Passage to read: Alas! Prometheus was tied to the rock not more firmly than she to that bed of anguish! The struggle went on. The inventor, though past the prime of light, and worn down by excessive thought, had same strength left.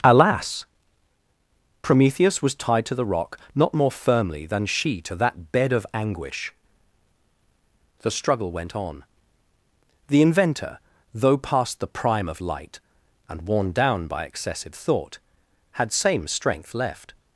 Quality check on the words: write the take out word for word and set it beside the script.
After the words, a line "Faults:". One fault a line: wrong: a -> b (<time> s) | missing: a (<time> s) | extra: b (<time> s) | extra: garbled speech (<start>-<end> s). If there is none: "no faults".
Alas! Prometheus was tied to the rock not more firmly than she to that bed of anguish! The struggle went on. The inventor, though past the prime of light, and worn down by excessive thought, had same strength left.
Faults:
no faults